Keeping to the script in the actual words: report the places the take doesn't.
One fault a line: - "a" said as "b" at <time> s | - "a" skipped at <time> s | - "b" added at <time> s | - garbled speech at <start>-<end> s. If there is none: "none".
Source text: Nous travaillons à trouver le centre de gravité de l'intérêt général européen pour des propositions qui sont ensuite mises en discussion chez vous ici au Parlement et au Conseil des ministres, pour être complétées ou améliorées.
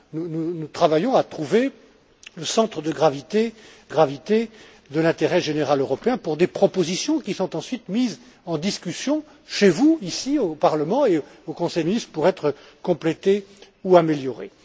- "gravité" added at 3.9 s
- "des" skipped at 11.8 s